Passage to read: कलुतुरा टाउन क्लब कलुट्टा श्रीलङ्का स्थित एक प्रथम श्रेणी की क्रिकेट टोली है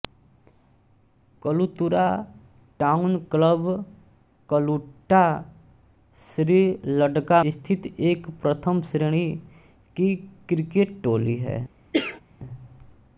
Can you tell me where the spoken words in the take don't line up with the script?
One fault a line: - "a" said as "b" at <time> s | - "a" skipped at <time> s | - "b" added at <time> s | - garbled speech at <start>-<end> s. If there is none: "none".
none